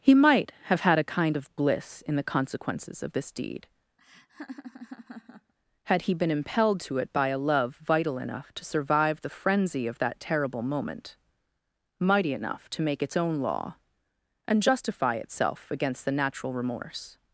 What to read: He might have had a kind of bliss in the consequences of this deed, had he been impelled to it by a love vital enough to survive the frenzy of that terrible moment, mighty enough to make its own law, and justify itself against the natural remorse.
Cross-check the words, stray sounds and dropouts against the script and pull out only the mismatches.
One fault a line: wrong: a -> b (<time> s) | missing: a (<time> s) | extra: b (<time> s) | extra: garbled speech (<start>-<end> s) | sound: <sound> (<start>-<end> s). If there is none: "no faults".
sound: laugh (4.0-5.5 s)